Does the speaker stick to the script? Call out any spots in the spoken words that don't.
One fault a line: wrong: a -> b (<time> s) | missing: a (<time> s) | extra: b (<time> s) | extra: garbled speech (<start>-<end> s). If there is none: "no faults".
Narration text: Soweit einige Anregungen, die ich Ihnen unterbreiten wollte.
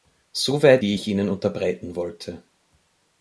missing: einige Anregungen (0.8 s)